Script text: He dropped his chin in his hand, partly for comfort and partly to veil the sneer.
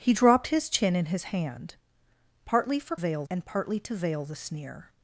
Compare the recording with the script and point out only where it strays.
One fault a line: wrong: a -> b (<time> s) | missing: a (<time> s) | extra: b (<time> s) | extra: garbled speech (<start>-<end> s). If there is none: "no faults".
wrong: comfort -> veil (2.9 s)